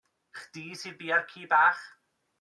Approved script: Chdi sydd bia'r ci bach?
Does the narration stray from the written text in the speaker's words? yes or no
no